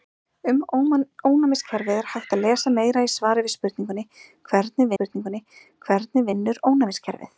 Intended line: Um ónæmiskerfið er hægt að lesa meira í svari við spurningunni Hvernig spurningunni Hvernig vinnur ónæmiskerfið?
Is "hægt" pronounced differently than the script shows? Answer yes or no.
no